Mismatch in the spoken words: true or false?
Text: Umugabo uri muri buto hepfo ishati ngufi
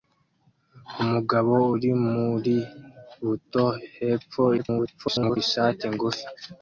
true